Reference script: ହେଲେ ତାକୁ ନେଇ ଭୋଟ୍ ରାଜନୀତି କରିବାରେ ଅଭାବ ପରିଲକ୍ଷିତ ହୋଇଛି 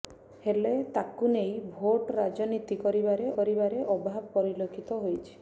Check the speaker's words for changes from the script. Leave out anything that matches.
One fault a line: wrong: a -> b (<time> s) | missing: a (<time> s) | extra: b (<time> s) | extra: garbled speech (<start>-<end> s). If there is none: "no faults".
extra: କରିବାରେ (3.4 s)